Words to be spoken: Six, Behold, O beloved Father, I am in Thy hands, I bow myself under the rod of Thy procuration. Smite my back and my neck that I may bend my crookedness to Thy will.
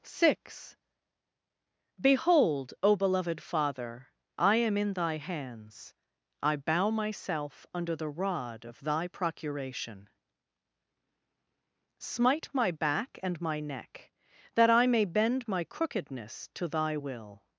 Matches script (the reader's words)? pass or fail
pass